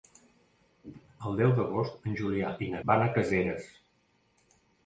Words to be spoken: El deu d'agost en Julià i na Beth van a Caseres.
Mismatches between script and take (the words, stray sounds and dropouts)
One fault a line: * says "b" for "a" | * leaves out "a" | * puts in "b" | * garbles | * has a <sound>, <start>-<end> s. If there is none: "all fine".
* leaves out "Beth"